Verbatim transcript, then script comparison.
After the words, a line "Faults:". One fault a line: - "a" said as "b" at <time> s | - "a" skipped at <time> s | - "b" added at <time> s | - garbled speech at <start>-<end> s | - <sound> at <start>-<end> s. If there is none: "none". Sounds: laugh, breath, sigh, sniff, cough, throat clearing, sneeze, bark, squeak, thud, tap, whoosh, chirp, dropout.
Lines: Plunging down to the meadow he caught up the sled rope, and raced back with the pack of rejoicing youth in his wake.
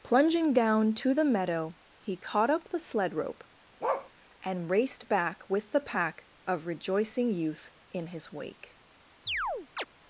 Plunging down to the meadow he caught up the sled rope, and raced back with the pack of rejoicing youth in his wake.
Faults:
- bark at 3.8-4.1 s
- chirp at 9.3-9.9 s